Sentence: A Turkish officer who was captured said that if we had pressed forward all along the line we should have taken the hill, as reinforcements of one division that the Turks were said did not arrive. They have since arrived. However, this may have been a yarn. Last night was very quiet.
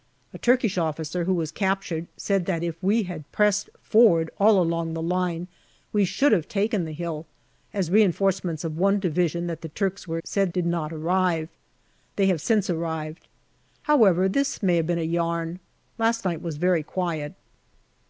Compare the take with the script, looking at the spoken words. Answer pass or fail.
pass